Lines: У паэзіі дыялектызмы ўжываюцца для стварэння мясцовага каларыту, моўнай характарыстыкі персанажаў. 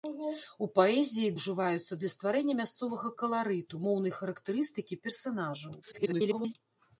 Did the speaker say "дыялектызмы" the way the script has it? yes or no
no